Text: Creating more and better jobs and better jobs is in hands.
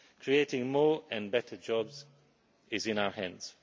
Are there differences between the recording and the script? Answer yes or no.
yes